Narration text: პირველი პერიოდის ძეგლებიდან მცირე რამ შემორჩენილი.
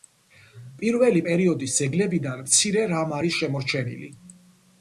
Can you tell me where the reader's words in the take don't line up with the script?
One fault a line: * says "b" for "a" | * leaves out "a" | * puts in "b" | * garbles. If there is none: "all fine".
* puts in "არის"